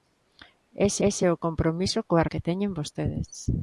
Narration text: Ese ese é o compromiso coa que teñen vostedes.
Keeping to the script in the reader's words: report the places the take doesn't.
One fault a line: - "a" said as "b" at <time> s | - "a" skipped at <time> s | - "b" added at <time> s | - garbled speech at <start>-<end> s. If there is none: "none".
none